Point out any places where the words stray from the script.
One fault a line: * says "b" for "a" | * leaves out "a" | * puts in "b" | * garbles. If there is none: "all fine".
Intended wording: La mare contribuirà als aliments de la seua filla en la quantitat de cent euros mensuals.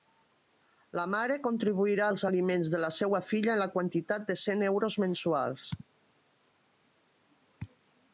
all fine